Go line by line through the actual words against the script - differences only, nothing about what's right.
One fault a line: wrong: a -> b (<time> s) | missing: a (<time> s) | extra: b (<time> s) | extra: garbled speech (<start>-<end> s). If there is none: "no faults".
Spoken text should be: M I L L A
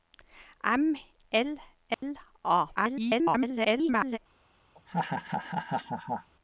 missing: I (0.9 s)
extra: garbled speech (2.8-4.2 s)